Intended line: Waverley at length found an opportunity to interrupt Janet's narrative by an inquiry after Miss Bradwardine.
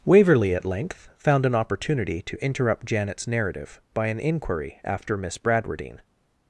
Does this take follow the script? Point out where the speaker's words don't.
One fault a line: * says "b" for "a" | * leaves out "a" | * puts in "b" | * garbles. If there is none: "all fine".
all fine